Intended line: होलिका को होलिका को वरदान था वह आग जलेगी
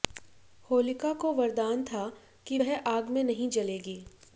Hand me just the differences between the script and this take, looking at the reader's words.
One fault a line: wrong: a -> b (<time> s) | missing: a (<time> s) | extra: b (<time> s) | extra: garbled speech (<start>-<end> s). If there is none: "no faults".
missing: होलिका को (1.3 s)
extra: कि (2.5 s)
extra: में नहीं (3.1 s)